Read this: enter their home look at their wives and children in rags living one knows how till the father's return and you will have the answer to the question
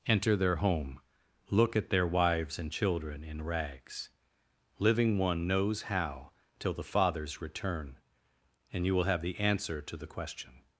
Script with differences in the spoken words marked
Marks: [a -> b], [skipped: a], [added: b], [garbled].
enter their home look at their wives and children in rags living one knows how till the father's return and you will have the answer to the question